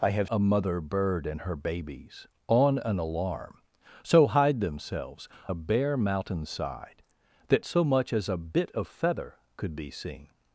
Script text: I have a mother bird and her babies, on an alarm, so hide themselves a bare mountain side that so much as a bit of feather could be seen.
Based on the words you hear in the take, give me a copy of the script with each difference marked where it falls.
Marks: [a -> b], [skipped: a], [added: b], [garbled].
I have a mother bird and her babies, on an alarm, so hide themselves a bare mountain side that so much as a bit of feather could be seen.